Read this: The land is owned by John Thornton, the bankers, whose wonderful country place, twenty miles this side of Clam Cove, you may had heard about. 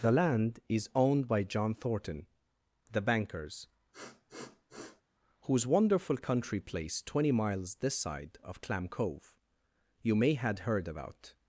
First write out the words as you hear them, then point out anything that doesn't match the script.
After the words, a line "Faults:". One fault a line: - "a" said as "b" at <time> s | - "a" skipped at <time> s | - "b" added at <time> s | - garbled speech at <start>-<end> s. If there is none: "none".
The land is owned by John Thornton, the bankers, whose wonderful country place, twenty miles this side of Clam Cove, you may had heard about.
Faults:
none